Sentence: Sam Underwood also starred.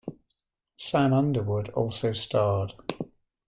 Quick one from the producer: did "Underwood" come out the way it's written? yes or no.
yes